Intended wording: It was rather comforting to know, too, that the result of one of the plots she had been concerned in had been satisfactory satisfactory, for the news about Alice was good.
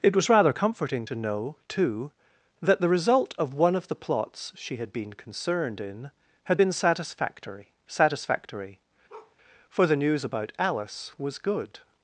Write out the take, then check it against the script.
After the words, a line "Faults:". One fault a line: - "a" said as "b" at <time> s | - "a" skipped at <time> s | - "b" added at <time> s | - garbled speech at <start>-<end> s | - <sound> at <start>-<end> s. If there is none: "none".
It was rather comforting to know, too, that the result of one of the plots she had been concerned in had been satisfactory satisfactory, for the news about Alice was good.
Faults:
- bark at 9.1-9.4 s